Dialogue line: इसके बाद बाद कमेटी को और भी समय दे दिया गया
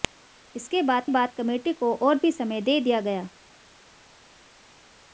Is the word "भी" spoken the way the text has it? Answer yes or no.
yes